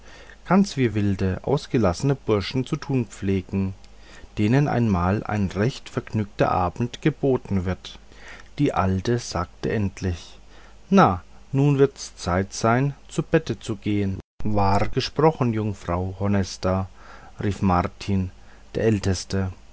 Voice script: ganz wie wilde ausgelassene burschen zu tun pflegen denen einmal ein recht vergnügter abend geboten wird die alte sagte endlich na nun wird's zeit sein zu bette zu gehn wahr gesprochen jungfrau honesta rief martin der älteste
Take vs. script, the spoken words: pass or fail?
pass